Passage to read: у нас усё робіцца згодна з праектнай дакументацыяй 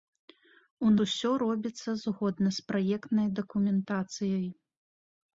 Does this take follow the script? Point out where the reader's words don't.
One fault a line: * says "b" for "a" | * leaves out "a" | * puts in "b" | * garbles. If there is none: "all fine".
* leaves out "нас"